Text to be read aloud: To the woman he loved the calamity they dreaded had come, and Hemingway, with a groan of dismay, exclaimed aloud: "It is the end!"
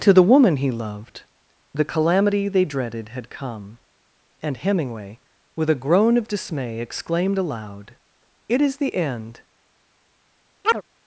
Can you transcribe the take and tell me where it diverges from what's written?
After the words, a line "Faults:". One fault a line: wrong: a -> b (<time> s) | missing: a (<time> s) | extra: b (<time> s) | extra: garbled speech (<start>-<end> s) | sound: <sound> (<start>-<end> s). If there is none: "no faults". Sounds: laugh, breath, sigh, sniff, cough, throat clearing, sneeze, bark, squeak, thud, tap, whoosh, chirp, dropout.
To the woman he loved the calamity they dreaded had come, and Hemingway, with a groan of dismay, exclaimed aloud: "It is the end!"
Faults:
sound: chirp (10.6-10.8 s)